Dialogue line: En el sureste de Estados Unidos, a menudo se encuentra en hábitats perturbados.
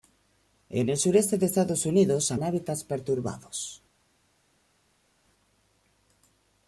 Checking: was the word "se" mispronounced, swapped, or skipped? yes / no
yes